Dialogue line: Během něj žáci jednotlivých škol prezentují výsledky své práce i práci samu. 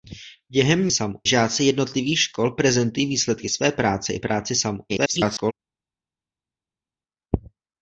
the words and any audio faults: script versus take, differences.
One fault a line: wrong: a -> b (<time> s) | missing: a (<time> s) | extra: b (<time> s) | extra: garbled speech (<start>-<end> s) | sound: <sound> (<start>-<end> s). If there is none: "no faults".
wrong: něj -> samu (0.9 s)
extra: garbled speech (4.9-5.5 s)